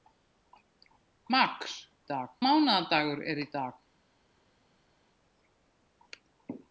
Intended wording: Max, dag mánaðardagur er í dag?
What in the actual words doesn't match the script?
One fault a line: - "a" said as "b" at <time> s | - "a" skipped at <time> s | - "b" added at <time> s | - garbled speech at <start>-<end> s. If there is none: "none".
none